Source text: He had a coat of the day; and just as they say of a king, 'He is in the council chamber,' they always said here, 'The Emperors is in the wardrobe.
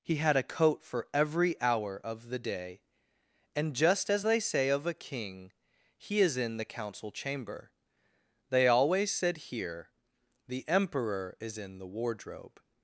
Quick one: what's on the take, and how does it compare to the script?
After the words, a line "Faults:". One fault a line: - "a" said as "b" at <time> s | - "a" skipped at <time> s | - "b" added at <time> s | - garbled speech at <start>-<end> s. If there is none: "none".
He had a coat for every hour of the day; and just as they say of a king, 'He is in the council chamber,' they always said here, 'The Emperor is in the wardrobe.
Faults:
- "for every hour" added at 0.8 s
- "Emperors" said as "Emperor" at 10.7 s